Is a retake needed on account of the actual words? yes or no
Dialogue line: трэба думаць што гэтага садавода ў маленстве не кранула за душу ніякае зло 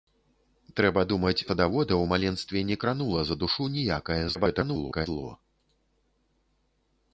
yes